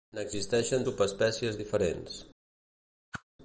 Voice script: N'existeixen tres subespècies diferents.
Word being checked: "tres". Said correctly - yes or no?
no